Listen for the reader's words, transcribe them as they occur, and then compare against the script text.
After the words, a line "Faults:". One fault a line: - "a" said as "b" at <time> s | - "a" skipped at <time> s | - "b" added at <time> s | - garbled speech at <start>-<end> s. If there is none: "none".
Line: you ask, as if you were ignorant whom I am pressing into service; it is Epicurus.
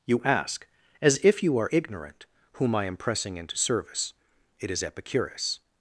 you ask, as if you are ignorant whom I am pressing into service; it is Epicurus.
Faults:
- "were" said as "are" at 1.6 s